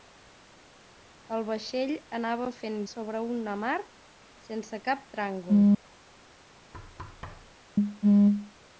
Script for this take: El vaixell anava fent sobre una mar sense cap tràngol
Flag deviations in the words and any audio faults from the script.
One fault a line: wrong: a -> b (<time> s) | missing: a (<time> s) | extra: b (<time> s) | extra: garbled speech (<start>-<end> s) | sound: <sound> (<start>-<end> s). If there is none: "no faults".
sound: thud (6.7-7.6 s)